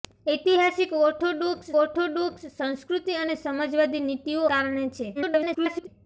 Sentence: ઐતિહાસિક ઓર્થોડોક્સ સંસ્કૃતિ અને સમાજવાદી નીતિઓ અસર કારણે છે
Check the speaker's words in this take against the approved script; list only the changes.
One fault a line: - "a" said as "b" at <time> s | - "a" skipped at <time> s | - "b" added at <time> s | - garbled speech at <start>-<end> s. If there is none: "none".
- "ઓર્થોડોક્સ" added at 1.7 s
- "અસર" skipped at 4.4 s
- garbled speech at 5.1-5.9 s